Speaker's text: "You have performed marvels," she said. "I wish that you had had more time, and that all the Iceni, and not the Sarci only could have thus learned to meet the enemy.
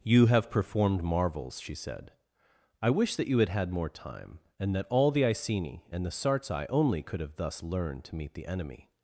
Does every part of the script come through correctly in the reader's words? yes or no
no